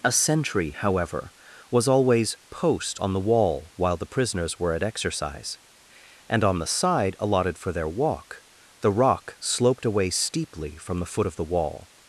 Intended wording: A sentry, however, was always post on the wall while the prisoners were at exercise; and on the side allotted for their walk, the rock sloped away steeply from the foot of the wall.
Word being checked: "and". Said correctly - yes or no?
yes